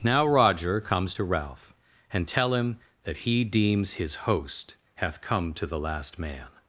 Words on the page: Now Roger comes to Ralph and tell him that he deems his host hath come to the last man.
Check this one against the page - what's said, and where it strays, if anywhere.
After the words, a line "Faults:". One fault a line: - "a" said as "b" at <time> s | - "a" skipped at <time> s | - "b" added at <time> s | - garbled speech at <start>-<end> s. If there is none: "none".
Now Roger comes to Ralph and tell him that he deems his host hath come to the last man.
Faults:
none